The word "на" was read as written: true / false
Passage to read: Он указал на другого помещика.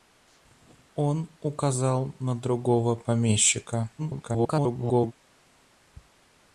true